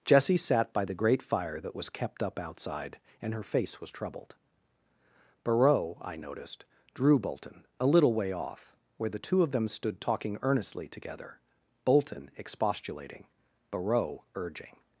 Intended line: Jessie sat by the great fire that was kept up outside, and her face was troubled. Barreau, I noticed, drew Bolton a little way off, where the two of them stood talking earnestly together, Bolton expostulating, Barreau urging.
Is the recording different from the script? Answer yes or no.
no